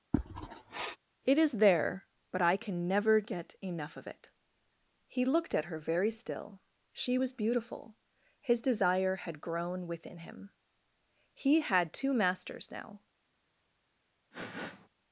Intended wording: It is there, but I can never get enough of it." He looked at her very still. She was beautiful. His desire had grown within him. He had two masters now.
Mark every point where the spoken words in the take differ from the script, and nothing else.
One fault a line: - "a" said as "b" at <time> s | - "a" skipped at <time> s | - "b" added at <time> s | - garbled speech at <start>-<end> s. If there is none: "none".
none